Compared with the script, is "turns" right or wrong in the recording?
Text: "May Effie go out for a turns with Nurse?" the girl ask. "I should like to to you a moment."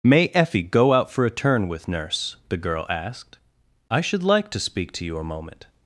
wrong